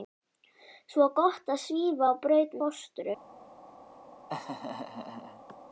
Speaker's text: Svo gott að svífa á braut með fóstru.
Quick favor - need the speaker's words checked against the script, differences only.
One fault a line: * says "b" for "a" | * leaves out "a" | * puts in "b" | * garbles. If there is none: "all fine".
* leaves out "með"